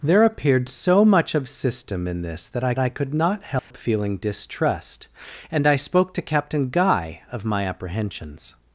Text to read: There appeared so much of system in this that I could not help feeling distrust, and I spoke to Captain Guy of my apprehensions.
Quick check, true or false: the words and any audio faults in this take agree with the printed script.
false